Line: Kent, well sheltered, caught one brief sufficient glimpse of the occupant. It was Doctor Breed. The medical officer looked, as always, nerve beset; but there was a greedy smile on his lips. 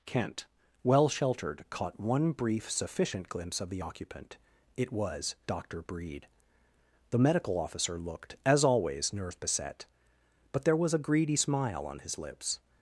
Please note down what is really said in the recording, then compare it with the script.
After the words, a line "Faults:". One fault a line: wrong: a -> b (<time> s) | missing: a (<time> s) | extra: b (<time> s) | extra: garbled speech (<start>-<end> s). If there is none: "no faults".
Kent, well sheltered, caught one brief sufficient glimpse of the occupant. It was Doctor Breed. The medical officer looked, as always, nerve beset; but there was a greedy smile on his lips.
Faults:
no faults